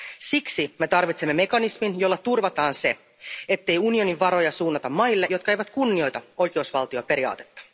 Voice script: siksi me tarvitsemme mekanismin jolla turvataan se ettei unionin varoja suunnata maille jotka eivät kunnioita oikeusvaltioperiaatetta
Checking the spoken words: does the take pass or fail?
pass